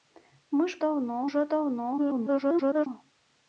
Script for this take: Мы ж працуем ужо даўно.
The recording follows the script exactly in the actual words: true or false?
false